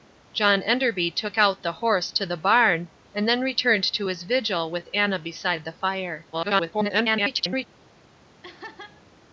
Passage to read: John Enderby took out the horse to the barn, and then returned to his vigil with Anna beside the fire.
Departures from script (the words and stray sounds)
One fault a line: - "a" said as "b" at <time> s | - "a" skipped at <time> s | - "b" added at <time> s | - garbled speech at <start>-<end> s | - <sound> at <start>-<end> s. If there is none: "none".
- garbled speech at 6.3-7.7 s
- laugh at 8.4-9.0 s